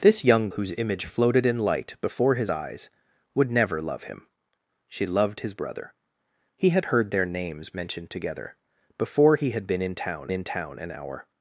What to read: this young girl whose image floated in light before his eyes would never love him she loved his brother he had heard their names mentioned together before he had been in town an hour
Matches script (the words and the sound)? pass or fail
fail